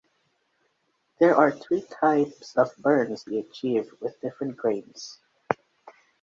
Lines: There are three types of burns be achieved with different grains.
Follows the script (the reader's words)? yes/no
yes